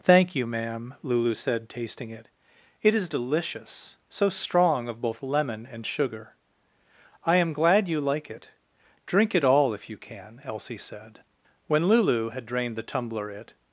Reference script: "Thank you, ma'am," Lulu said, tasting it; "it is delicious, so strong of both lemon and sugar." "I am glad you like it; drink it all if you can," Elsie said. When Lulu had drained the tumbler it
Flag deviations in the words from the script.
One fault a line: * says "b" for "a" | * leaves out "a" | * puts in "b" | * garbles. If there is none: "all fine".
all fine